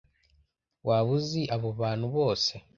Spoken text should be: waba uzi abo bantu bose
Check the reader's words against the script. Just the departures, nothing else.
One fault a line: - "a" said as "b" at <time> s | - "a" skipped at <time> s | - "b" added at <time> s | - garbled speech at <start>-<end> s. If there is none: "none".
none